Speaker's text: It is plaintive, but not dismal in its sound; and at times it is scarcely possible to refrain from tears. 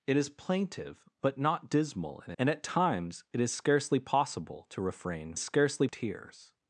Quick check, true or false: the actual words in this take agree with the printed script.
false